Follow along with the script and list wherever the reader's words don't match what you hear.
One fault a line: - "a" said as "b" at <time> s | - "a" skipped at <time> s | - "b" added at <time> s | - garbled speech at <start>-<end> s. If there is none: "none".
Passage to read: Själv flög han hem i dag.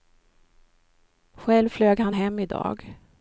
none